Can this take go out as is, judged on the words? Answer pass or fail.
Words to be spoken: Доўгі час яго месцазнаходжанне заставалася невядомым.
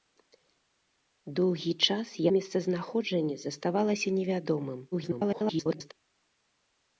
fail